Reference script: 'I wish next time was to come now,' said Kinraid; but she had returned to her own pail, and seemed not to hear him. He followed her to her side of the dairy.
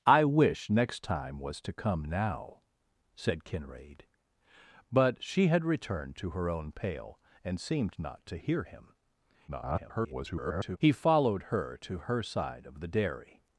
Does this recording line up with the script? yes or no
no